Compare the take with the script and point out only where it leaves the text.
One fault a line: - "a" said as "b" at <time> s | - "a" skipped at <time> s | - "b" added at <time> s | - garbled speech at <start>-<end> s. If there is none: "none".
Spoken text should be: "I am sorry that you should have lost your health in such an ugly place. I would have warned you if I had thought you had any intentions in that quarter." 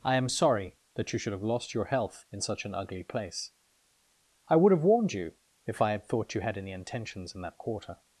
none